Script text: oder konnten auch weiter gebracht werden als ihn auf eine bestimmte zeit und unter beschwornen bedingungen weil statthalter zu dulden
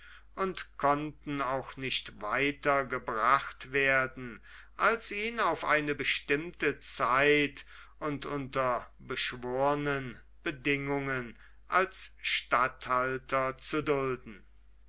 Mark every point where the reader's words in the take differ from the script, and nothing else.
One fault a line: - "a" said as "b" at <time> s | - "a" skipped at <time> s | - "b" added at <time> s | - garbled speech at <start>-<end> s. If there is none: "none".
- "oder" said as "und" at 0.3 s
- "nicht" added at 1.8 s
- "weil" said as "als" at 11.7 s